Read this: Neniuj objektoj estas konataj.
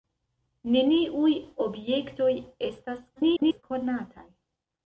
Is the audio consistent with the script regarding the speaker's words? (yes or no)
no